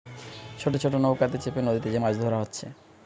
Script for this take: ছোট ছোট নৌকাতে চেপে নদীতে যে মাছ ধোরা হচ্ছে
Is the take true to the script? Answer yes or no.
yes